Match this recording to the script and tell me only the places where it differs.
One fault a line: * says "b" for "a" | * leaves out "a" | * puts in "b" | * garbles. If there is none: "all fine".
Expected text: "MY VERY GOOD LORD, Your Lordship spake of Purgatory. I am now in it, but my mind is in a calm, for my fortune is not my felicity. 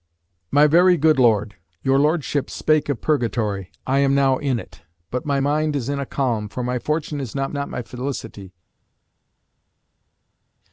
* puts in "not"